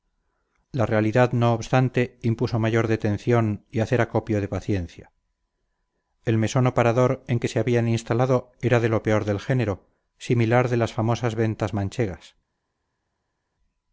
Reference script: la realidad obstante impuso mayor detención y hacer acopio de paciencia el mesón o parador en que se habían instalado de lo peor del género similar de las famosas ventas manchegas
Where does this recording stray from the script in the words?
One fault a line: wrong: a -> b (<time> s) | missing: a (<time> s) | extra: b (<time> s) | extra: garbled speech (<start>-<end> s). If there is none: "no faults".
extra: no (1.3 s)
extra: era (8.6 s)